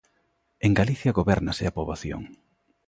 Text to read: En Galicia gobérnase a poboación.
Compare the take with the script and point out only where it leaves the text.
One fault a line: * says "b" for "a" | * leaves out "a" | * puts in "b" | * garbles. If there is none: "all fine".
all fine